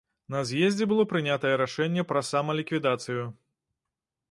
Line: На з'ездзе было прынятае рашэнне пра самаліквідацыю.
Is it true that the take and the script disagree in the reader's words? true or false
false